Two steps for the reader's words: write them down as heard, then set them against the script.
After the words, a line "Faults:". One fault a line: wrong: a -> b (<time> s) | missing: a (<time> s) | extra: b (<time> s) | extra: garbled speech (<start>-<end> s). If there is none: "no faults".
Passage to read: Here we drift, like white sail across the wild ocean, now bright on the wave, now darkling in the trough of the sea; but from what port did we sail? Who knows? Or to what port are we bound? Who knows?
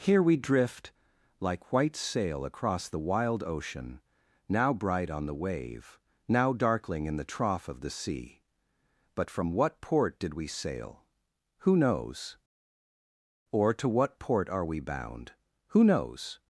Here we drift, like white sail across the wild ocean, now bright on the wave, now darkling in the trough of the sea; but from what port did we sail? Who knows? Or to what port are we bound? Who knows?
Faults:
no faults